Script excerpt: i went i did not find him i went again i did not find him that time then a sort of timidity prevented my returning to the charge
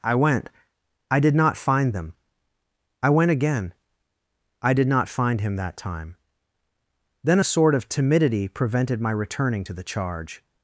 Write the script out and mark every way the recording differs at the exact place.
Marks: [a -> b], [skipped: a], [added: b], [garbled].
i went i did not find [him -> them] i went again i did not find him that time then a sort of timidity prevented my returning to the charge